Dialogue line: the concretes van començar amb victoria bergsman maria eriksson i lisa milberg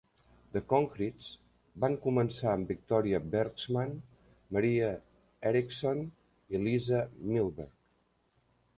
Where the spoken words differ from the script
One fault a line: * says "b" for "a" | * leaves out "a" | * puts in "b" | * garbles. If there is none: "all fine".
all fine